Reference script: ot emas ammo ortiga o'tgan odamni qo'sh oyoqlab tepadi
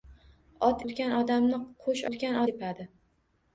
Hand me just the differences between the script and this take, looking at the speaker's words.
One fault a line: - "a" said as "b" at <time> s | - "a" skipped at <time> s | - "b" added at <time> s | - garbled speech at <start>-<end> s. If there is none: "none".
- "emas ammo ortiga" skipped at 0.8 s
- "oyoqlab" said as "o'tgan" at 2.1 s